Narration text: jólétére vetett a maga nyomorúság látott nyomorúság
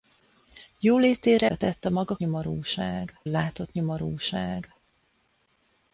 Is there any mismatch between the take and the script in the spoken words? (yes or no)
no